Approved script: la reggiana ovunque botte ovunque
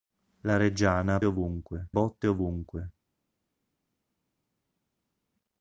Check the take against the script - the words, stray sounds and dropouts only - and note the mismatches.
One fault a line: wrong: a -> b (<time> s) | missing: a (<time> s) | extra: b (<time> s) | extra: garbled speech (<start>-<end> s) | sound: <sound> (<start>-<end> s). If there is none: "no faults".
no faults